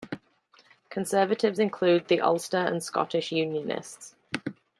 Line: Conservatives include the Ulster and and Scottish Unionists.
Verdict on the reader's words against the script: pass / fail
fail